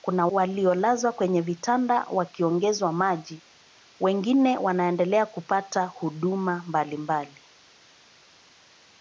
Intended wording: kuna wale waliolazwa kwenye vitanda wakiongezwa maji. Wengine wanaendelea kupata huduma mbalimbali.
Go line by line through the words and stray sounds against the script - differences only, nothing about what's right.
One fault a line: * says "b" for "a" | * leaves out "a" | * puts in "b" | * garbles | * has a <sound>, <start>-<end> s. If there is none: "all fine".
* leaves out "wale"